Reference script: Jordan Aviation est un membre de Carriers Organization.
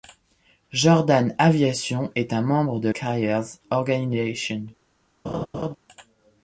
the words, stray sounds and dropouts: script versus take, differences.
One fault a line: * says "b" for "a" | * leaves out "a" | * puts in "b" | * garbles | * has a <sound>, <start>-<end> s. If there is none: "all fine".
* has a laugh, 5.2-5.8 s